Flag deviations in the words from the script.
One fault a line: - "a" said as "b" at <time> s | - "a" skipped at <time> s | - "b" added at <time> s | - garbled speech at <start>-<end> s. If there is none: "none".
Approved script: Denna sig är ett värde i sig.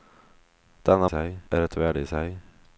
none